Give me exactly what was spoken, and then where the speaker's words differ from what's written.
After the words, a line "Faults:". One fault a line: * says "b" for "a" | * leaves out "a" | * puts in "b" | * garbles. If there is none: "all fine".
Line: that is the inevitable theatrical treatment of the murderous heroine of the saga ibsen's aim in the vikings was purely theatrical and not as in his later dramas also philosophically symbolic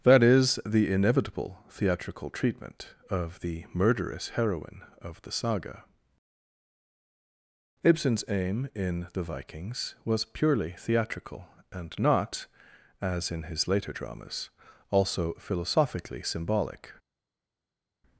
that is the inevitable theatrical treatment of the murderous heroine of the saga ibsen's aim in the vikings was purely theatrical and not as in his later dramas also philosophically symbolic
Faults:
all fine